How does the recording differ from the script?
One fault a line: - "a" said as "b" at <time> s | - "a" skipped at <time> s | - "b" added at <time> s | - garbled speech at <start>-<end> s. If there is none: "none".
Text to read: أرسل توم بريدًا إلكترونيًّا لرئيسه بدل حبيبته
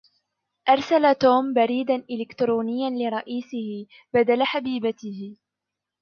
none